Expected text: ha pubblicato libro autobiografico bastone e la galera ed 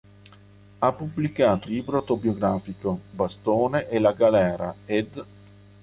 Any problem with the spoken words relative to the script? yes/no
no